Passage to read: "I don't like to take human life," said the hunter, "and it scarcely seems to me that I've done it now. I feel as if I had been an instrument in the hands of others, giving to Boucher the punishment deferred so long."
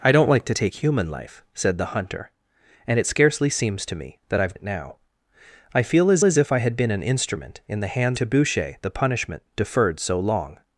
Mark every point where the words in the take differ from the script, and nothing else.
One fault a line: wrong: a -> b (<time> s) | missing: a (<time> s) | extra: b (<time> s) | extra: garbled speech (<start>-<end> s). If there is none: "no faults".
missing: done (4.5 s)
extra: as (6.2 s)
missing: of others giving (8.2 s)